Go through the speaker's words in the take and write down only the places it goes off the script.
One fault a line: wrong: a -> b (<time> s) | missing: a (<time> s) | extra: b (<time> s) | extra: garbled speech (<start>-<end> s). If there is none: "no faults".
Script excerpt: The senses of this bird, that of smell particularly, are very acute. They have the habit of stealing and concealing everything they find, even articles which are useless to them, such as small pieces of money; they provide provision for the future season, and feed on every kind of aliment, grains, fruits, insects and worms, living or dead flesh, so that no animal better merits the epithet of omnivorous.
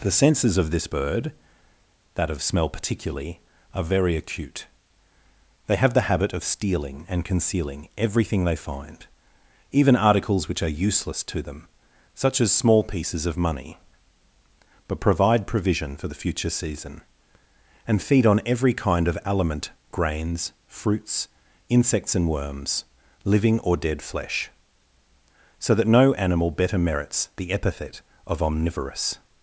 wrong: they -> but (14.9 s)